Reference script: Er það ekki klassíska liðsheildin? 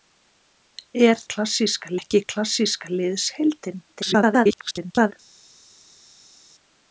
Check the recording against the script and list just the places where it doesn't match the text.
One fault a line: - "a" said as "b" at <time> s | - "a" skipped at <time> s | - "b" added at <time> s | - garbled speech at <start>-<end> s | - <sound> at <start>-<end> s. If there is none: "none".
- "það" said as "klassíska" at 1.3 s
- garbled speech at 3.9-5.1 s